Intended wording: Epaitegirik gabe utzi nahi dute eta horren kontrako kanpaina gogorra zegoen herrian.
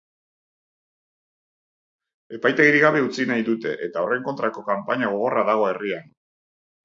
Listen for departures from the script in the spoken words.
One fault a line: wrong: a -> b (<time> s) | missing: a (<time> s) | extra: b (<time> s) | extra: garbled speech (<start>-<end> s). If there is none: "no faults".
wrong: zegoen -> dago (5.5 s)